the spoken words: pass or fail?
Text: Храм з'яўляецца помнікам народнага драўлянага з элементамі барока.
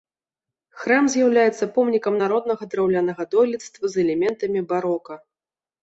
fail